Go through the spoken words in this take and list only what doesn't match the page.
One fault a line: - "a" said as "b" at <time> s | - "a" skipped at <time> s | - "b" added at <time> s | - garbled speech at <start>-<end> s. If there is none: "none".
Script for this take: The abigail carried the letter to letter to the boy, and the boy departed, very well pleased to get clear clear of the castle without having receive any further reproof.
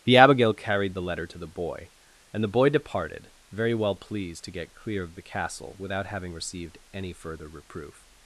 - "letter to" skipped at 1.4 s
- "clear" skipped at 5.0 s
- "receive" said as "received" at 6.3 s